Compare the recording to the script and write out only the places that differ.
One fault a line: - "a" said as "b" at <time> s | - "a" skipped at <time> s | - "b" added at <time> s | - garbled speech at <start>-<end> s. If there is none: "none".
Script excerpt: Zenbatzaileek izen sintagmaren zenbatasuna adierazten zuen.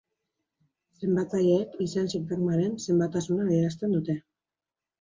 - "zuen" said as "dute" at 4.0 s